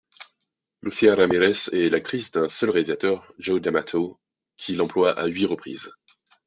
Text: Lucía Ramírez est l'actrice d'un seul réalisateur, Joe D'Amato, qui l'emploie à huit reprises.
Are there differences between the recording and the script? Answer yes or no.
no